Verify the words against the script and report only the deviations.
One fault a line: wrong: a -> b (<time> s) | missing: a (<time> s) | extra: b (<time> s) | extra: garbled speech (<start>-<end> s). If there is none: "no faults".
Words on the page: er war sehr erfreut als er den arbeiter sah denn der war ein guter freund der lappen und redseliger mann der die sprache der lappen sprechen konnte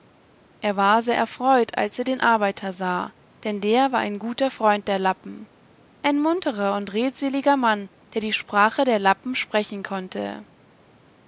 extra: ein munterer (6.0 s)